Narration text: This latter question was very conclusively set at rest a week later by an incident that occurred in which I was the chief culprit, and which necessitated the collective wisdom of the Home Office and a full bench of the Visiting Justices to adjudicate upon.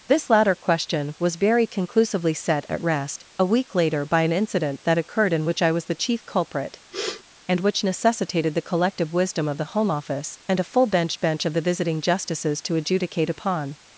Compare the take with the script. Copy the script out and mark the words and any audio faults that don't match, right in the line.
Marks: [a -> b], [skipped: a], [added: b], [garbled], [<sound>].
This latter question was very conclusively set at rest a week later by an incident that occurred in which I was the chief culprit, [sniff] and which necessitated the collective wisdom of the Home Office and a full bench [added: bench] of the Visiting Justices to adjudicate upon.